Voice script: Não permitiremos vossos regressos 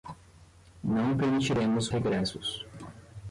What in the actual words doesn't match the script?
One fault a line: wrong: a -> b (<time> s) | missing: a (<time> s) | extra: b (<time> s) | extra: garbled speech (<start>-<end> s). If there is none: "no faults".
missing: vossos (1.9 s)